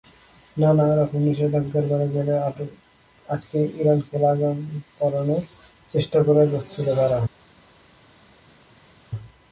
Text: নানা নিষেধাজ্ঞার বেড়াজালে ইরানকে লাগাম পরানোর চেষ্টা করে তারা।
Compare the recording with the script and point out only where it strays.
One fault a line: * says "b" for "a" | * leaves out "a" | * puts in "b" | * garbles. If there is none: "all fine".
* puts in "রকম"
* puts in "আটকে"
* puts in "যাচ্ছিল"